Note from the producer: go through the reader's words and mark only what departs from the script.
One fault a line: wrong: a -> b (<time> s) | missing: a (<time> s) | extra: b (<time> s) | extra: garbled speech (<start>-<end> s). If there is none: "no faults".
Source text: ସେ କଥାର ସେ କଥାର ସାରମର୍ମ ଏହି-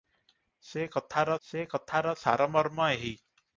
no faults